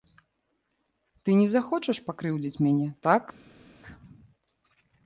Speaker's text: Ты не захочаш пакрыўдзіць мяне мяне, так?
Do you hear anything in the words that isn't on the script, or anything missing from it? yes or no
yes